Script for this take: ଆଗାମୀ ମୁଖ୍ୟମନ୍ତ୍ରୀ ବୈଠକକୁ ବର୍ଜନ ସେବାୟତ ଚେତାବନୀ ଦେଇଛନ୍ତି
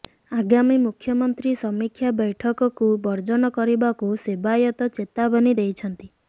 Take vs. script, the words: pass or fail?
fail